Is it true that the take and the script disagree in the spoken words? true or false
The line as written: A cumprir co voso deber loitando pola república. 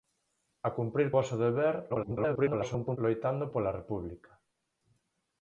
true